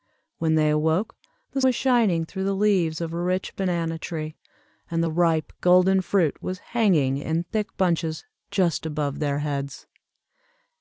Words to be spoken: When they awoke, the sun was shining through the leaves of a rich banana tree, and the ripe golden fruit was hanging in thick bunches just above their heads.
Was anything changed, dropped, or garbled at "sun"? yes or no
yes